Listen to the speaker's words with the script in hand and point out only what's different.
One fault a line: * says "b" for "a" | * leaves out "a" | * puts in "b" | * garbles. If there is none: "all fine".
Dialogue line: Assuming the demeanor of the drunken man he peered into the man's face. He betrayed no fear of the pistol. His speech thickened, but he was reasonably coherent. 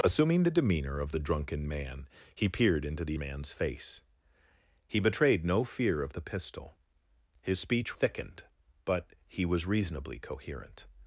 all fine